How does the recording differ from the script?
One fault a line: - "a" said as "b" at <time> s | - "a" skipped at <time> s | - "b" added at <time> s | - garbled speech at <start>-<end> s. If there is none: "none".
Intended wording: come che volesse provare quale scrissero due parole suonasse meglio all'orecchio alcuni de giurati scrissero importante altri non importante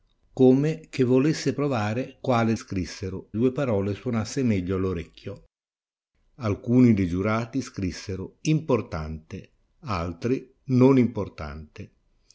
none